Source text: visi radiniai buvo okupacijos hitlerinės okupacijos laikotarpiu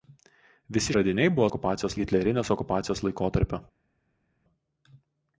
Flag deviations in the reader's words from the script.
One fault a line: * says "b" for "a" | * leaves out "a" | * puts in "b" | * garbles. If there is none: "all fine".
all fine